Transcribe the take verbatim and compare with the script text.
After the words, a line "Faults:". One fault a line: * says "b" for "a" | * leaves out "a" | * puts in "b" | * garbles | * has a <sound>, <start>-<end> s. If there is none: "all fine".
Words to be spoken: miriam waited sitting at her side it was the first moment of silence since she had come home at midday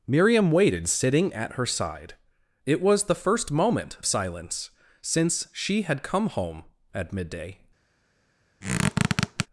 miriam waited sitting at her side it was the first moment silence since she had come home at midday
Faults:
* leaves out "of"
* has a squeak, 8.6-9.5 s